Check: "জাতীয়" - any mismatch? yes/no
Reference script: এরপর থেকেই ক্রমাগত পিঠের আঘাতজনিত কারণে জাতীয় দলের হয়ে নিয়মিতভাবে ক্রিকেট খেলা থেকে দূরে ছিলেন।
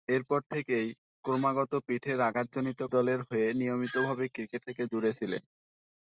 yes